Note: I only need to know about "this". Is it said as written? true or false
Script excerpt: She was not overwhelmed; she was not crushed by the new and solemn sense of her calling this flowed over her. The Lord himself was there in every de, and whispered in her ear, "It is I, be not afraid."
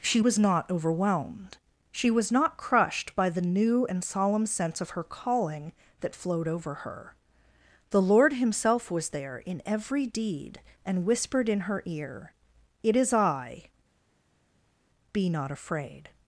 false